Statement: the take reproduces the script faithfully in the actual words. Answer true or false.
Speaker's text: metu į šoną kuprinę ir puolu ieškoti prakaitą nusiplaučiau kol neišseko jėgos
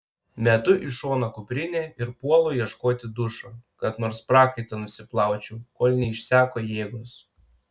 false